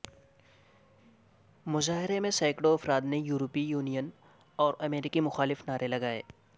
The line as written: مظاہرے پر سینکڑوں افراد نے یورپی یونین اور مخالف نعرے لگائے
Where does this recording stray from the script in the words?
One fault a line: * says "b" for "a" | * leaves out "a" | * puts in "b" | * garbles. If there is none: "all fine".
* says "میں" for "پر"
* puts in "امریکہ"